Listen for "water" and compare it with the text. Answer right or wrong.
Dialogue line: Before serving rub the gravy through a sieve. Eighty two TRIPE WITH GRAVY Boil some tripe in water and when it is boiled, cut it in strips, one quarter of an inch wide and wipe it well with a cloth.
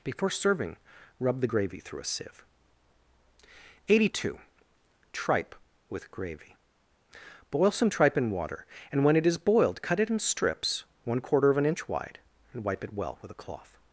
right